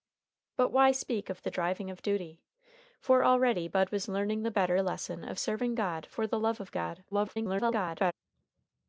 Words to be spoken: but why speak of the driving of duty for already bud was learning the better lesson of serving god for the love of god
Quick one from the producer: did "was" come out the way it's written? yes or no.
yes